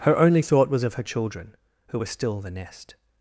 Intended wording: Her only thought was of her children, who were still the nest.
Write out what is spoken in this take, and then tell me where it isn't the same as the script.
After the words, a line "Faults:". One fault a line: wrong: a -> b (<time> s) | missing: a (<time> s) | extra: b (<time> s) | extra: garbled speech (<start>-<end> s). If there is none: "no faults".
Her only thought was of her children, who were still the nest.
Faults:
no faults